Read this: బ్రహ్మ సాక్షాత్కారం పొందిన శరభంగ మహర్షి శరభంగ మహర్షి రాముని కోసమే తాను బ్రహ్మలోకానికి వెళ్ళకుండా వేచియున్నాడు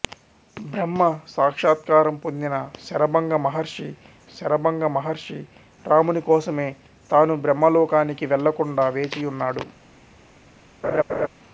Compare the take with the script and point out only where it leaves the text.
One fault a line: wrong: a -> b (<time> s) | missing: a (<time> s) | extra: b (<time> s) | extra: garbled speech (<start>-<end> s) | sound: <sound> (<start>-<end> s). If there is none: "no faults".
sound: laugh (10.8-11.3 s)